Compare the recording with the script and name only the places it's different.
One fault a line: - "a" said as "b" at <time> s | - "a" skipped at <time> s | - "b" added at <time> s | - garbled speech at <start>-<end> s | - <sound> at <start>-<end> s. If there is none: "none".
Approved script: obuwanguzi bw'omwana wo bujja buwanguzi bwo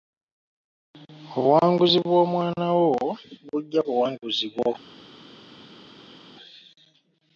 none